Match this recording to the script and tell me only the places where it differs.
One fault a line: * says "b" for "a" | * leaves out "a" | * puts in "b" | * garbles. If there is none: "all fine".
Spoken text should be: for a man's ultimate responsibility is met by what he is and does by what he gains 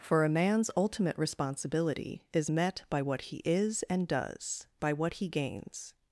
all fine